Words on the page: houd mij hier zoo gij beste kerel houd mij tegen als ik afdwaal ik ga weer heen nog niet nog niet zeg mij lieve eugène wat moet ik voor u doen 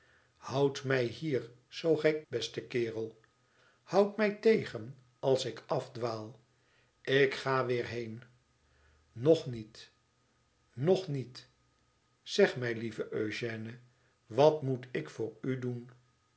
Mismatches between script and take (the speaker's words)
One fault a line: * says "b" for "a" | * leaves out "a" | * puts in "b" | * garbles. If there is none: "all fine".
all fine